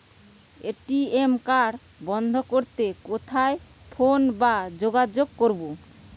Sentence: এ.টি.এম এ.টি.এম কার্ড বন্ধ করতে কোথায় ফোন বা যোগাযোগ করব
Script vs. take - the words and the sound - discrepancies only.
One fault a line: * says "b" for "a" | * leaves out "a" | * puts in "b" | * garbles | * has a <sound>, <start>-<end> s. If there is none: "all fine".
* leaves out "এ.টি.এম"